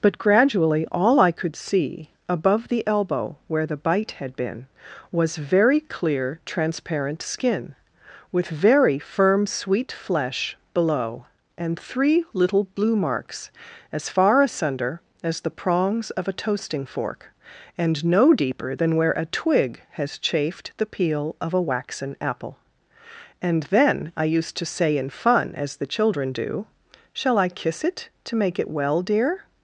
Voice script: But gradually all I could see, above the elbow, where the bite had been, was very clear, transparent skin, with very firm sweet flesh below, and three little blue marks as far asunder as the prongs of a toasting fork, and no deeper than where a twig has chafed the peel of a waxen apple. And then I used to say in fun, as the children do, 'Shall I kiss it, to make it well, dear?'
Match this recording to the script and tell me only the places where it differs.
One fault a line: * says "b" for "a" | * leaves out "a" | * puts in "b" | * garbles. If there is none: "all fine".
all fine